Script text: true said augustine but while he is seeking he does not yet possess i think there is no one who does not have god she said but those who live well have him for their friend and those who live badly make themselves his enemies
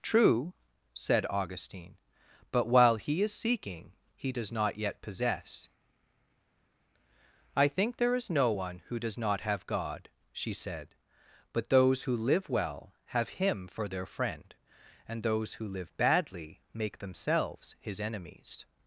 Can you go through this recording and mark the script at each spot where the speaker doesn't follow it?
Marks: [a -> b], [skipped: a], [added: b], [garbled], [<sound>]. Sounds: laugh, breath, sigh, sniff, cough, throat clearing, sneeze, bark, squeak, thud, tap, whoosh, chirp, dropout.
true said augustine but while he is seeking he does not yet possess i think there is no one who does not have god she said but those who live well have him for their friend and those who live badly make themselves his enemies